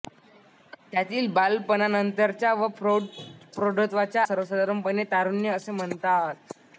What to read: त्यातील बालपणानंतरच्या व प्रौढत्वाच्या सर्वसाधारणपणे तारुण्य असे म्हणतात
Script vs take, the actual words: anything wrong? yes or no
no